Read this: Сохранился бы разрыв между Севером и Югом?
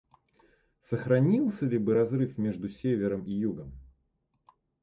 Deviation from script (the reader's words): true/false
true